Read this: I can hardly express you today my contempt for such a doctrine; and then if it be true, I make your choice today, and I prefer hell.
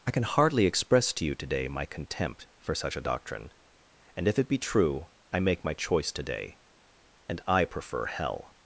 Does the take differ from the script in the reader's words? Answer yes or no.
yes